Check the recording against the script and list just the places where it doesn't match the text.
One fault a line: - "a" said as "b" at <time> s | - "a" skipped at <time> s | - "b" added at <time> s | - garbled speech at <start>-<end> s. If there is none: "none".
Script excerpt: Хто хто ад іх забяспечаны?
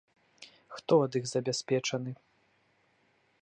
- "хто" skipped at 0.9 s